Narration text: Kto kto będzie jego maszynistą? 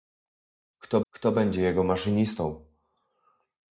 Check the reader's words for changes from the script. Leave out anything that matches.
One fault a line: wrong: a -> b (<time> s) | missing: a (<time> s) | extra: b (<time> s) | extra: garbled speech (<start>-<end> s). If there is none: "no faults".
no faults